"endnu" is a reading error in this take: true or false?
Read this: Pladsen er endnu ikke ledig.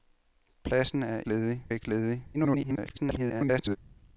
true